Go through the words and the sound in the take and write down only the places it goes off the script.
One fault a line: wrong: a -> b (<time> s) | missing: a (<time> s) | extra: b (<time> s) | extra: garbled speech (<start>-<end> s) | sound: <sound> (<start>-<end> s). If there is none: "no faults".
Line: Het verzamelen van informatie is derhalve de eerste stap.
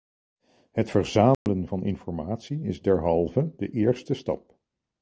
sound: dropout (1.3-1.5 s)